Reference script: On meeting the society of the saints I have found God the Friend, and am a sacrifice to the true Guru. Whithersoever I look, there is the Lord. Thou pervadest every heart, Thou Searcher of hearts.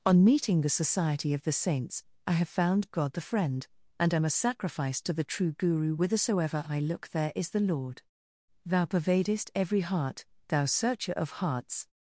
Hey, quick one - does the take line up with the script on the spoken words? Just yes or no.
yes